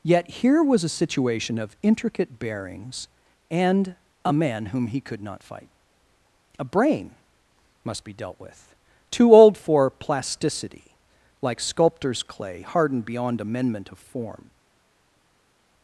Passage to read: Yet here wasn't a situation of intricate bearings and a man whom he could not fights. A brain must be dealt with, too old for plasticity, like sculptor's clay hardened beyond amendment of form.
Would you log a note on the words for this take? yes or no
yes